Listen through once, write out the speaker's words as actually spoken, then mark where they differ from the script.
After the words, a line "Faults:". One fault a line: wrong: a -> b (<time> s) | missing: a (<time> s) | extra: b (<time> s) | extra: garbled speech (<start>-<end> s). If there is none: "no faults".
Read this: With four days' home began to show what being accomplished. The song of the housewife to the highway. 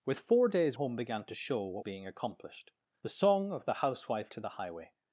With four days' home began to show what being accomplished. The song of the housewife to the highway.
Faults:
no faults